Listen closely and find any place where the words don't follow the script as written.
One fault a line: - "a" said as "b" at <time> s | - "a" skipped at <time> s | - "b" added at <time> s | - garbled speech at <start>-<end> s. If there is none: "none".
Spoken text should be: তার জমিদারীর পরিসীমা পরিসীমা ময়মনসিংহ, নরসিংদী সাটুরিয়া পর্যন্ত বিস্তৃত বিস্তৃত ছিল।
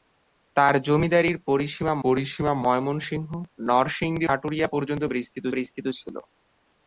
none